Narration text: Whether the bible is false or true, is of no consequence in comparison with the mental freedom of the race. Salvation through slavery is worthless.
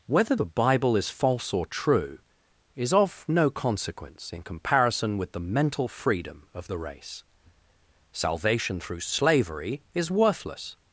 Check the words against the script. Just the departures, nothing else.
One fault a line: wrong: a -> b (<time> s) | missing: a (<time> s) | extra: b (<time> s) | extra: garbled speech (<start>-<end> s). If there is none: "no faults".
no faults